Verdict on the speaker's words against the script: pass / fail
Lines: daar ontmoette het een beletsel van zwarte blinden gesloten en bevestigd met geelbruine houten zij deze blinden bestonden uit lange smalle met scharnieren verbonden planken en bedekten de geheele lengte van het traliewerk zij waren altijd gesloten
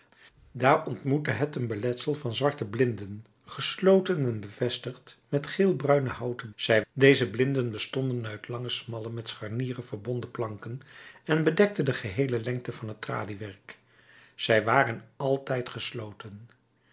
pass